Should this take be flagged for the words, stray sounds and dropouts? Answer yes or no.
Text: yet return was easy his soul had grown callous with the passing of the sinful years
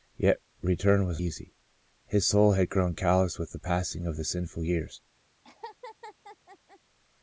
yes